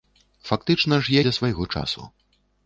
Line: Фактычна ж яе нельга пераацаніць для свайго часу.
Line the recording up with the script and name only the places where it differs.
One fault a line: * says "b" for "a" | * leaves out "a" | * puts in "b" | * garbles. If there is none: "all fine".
* leaves out "яе нельга пераацаніць"